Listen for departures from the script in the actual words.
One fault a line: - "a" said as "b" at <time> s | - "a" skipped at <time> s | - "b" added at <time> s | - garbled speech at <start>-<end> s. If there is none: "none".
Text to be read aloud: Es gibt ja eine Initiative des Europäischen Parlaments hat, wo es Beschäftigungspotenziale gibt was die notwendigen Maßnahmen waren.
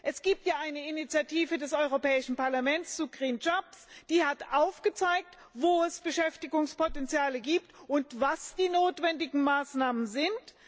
- "zu die aufgezeigt" added at 3.0 s
- "und" added at 7.9 s
- "waren" said as "sind" at 10.1 s